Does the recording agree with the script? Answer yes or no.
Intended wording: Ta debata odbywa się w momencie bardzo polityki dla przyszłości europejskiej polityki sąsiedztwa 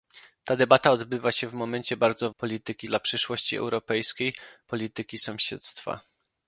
yes